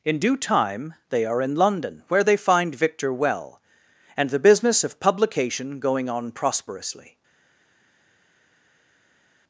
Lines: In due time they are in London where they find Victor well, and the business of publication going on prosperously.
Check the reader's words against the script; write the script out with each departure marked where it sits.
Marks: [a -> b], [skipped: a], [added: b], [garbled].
In due time they are in London where they find Victor well, and the business of publication going on prosperously.